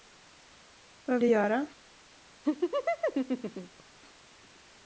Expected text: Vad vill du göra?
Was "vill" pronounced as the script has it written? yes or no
no